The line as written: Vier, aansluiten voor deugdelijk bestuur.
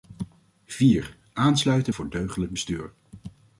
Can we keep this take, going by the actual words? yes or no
yes